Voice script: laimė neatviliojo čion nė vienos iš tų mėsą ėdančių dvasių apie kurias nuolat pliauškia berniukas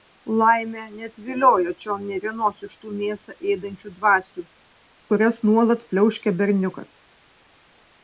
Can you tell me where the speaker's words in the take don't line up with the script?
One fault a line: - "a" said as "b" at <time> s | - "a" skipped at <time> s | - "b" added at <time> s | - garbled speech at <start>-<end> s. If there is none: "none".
- "apie" skipped at 4.5 s